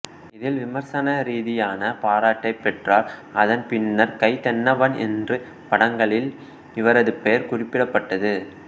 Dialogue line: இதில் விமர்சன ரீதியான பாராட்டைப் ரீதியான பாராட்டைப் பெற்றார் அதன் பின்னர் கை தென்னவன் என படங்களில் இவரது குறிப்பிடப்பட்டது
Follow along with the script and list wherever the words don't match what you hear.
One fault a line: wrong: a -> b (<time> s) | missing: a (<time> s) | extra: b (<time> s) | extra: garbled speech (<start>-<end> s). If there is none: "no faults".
missing: ரீதியான பாராட்டைப் (2.6 s)
wrong: என -> என்று (5.1 s)
extra: பெயர் (7.2 s)